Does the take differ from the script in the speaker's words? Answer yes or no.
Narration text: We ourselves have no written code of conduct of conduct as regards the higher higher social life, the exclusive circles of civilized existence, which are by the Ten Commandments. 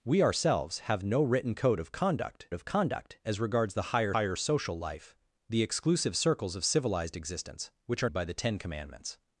no